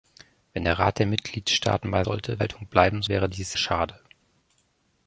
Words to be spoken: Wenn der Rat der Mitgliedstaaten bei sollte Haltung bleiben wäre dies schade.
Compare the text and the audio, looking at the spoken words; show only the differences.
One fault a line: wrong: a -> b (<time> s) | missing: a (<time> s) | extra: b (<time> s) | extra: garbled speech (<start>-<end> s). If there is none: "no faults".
no faults